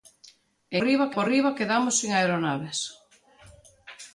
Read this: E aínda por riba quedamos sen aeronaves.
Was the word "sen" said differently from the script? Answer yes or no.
no